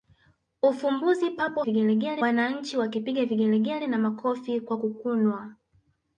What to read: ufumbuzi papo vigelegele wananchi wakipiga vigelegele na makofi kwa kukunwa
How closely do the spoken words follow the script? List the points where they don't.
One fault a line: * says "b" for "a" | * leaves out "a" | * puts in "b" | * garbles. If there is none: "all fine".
all fine